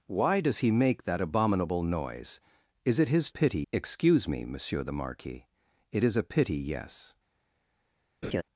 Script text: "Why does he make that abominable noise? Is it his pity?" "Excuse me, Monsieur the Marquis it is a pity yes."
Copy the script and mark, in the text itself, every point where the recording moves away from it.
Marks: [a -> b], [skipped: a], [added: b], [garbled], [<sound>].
"Why does he make that abominable noise? Is it his pity?" "Excuse me, Monsieur the Marquis it is a pity yes." [laugh]